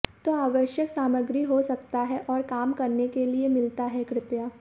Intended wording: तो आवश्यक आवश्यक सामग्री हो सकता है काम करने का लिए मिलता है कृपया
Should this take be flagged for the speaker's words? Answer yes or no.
yes